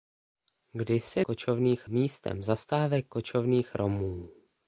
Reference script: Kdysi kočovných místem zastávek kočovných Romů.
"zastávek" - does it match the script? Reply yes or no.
yes